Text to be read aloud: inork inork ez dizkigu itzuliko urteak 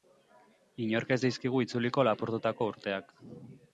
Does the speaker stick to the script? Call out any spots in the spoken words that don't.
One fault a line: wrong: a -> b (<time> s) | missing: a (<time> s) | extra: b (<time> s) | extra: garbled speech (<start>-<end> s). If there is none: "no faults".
missing: inork (1.1 s)
extra: lapurtutako (2.1 s)